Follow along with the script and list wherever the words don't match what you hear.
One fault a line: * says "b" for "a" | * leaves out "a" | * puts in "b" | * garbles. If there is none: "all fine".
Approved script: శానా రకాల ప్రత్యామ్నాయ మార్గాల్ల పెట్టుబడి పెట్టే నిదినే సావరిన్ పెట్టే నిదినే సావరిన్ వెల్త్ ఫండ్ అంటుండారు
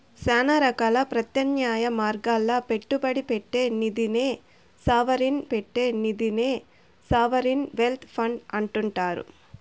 all fine